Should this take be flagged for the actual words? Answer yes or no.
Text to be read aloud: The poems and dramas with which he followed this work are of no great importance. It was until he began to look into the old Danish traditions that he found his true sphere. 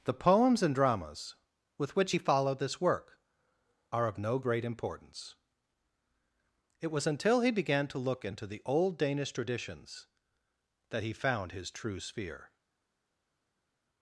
no